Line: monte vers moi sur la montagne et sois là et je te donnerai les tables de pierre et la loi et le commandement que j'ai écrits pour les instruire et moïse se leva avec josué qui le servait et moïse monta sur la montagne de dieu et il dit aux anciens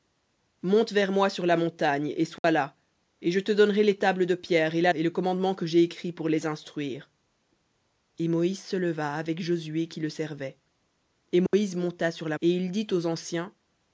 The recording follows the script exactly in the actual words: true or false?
false